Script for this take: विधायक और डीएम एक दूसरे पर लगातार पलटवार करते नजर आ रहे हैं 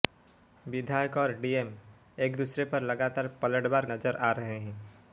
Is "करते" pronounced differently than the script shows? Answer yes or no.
yes